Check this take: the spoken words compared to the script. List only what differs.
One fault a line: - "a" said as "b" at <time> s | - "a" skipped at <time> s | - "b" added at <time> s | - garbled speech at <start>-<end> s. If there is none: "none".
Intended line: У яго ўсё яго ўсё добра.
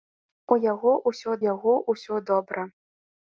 none